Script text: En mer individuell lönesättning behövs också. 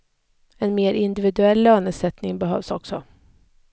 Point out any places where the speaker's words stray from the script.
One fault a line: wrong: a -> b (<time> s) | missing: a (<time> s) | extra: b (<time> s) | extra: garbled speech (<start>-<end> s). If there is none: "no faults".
no faults